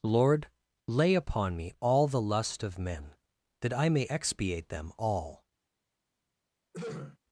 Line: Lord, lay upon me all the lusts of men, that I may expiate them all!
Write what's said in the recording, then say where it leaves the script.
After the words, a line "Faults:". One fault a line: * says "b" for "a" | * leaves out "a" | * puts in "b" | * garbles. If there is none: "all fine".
Lord, lay upon me all the lust of men, that I may expiate them all!
Faults:
* says "lust" for "lusts"